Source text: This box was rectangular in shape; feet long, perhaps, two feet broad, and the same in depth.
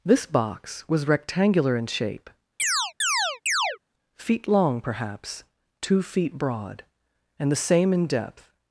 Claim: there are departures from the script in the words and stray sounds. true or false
true